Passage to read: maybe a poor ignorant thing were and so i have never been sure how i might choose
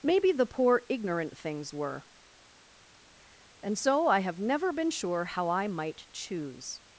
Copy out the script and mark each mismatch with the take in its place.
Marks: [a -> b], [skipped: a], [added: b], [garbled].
maybe [a -> the] poor ignorant [thing -> things] were and so i have never been sure how i might choose